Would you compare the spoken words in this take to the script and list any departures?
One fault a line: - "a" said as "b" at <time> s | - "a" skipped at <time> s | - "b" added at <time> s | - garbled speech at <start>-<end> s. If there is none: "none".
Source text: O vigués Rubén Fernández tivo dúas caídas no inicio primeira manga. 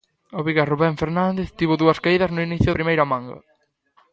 none